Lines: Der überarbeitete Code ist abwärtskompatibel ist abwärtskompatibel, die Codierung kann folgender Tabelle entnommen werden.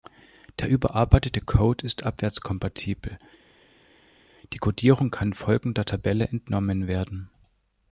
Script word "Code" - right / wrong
right